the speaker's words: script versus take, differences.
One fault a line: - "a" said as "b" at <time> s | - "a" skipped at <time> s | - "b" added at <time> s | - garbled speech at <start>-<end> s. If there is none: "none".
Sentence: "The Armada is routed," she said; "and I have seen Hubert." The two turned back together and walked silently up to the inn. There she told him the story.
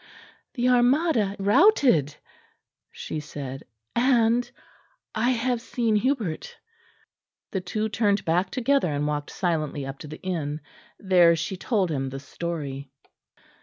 - "is" skipped at 1.4 s